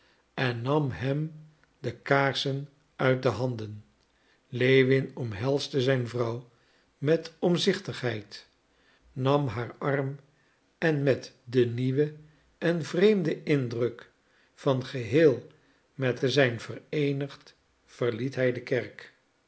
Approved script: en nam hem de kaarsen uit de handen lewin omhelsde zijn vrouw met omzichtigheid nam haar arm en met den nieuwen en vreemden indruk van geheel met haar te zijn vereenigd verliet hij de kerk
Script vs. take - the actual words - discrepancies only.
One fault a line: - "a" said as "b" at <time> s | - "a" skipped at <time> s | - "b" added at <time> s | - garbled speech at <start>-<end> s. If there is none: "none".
- "haar" skipped at 16.2 s